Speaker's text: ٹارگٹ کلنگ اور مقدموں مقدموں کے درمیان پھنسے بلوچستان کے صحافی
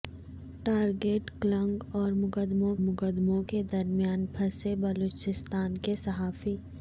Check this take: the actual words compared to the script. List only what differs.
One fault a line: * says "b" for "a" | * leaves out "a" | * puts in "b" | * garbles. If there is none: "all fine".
all fine